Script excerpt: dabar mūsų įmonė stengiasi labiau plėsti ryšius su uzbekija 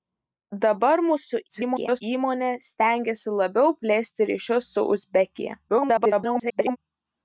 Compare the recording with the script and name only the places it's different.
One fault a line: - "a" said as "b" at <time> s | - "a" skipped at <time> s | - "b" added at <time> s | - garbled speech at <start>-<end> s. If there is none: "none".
- garbled speech at 1.5-2.0 s
- garbled speech at 5.7-6.8 s